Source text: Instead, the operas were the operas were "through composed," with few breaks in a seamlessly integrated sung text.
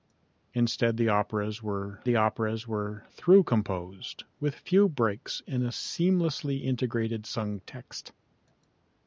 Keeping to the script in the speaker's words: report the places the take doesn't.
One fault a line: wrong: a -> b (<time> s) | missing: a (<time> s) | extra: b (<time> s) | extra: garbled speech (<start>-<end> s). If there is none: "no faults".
no faults